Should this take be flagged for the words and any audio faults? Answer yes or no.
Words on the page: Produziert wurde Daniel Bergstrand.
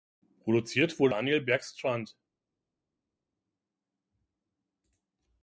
no